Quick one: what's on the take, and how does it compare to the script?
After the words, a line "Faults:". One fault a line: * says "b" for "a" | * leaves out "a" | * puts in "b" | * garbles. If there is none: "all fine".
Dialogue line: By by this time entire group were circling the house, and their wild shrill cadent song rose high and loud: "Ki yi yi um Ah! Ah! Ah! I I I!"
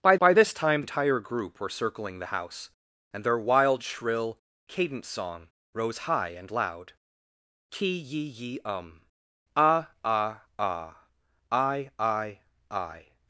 By by this time entire group were circling the house, and their wild shrill cadent song rose high and loud: "Ki yi yi um Ah! Ah! Ah! I I I!"
Faults:
all fine